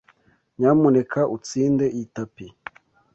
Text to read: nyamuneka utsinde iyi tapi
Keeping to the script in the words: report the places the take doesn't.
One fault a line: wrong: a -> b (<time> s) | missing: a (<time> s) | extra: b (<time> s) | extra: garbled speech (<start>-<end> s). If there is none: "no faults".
no faults